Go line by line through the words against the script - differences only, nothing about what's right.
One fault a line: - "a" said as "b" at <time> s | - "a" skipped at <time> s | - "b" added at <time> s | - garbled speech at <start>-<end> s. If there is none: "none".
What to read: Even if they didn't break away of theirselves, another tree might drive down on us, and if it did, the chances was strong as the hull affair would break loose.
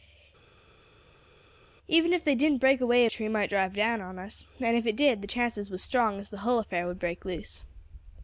- "of theirselves another" skipped at 3.1 s